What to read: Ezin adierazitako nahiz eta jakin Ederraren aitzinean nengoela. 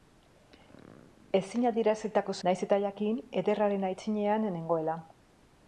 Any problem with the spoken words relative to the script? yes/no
no